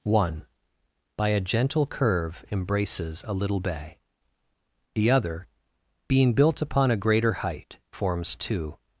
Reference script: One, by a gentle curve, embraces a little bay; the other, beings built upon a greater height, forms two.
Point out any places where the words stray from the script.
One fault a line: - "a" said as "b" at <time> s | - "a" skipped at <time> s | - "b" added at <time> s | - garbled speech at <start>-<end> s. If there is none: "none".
- "beings" said as "being" at 6.1 s